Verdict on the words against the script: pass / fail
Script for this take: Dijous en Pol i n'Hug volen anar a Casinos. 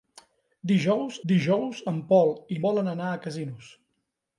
fail